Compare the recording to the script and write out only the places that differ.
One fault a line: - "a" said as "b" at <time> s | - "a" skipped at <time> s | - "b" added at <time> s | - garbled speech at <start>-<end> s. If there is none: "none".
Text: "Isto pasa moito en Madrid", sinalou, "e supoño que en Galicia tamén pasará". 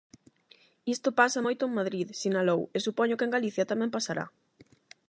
none